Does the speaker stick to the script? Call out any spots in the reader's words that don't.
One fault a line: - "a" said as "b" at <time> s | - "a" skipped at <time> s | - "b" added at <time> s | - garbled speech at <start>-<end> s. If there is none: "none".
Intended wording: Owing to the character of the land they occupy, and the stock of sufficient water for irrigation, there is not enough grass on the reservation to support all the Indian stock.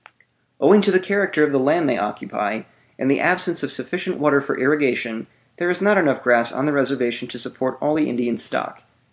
- "stock" said as "absence" at 3.2 s